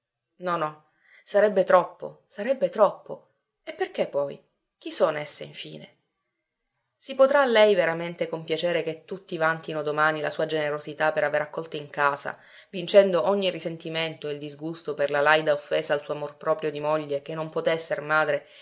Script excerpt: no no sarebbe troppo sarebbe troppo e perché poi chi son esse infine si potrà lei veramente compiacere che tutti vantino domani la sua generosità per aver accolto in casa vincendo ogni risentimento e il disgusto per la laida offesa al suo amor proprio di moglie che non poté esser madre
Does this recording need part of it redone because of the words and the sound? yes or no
no